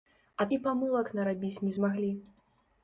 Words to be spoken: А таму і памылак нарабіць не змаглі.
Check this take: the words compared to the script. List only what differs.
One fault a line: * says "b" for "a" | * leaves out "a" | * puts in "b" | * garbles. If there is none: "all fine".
* leaves out "таму"